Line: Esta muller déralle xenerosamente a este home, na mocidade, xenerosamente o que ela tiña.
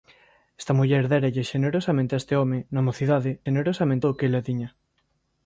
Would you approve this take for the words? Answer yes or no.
yes